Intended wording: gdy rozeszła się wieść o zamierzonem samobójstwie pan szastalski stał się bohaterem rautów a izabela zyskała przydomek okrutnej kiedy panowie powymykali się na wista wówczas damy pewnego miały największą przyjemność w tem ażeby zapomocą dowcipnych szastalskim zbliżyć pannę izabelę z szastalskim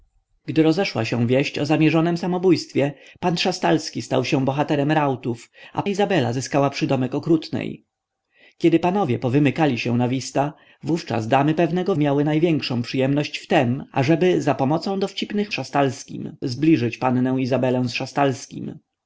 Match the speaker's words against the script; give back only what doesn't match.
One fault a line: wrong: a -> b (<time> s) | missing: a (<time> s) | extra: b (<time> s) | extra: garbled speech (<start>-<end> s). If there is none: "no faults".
no faults